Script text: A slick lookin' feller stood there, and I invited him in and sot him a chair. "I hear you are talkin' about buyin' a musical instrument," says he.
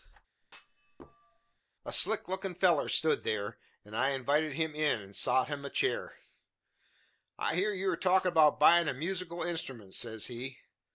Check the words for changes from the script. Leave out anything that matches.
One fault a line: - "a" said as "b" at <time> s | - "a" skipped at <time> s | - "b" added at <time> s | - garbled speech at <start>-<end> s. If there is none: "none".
none